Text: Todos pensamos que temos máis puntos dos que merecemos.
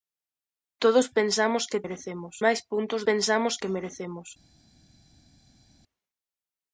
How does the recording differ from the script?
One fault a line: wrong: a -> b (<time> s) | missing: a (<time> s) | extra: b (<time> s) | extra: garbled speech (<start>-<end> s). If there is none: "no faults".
wrong: temos -> merecemos (1.8 s)
wrong: dos -> pensamos (3.1 s)